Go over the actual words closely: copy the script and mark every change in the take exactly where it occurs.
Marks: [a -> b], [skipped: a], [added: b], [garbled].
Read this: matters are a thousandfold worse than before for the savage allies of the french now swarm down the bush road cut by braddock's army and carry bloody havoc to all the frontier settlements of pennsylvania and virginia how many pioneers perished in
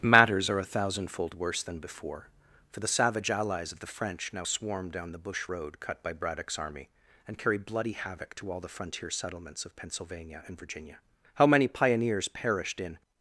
matters are a thousandfold worse than before for the savage allies of the french now swarm down the bush road cut by braddock's army and carry bloody havoc to all the frontier settlements of pennsylvania and virginia how many pioneers perished in